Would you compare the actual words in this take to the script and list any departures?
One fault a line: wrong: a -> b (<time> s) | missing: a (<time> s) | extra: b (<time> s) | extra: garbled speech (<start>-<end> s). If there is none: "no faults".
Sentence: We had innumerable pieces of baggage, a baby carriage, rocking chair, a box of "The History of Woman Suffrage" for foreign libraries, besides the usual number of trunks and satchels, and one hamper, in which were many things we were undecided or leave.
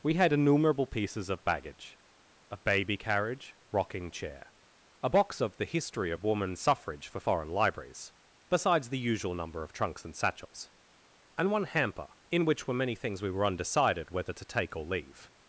extra: whether to take (14.1 s)